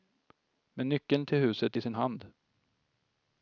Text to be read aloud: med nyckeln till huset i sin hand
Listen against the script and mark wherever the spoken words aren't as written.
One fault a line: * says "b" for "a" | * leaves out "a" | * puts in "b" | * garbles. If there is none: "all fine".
all fine